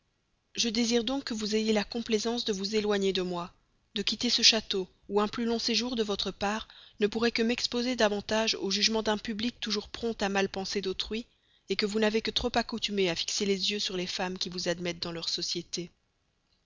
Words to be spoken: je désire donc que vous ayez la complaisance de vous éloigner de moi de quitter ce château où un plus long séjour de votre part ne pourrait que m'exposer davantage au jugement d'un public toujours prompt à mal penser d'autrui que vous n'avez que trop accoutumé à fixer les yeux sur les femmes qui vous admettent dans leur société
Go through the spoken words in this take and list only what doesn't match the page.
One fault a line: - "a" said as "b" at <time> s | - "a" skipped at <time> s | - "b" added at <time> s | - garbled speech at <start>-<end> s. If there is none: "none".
none